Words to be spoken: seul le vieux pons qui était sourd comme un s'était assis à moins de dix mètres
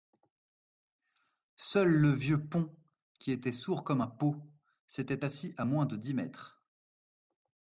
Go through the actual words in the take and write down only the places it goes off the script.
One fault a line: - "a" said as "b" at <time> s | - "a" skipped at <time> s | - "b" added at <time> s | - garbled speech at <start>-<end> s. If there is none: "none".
- "pot" added at 4.1 s